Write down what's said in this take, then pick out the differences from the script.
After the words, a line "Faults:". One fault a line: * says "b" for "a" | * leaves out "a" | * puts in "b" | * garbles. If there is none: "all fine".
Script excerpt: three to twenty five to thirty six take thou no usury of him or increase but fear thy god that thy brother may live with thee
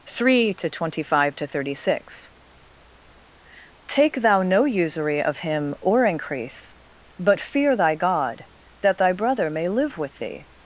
three to twenty five to thirty six take thou no usury of him or increase but fear thy god that thy brother may live with thee
Faults:
all fine